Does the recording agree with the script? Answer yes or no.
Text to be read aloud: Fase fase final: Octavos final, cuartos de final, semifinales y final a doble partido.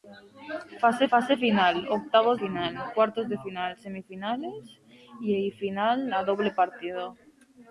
yes